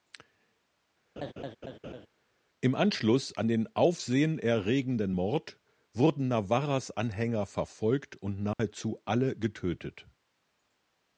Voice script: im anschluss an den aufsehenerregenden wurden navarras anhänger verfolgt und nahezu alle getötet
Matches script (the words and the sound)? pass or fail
fail